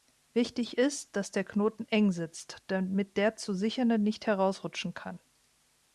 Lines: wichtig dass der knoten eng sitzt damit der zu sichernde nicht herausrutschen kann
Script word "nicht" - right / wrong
right